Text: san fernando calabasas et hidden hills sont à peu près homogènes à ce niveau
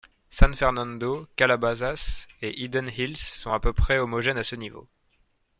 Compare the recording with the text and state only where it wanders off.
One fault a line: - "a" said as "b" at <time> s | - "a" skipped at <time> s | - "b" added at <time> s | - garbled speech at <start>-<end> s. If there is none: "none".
none